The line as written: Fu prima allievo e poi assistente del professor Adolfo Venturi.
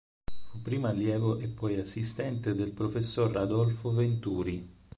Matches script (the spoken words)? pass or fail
pass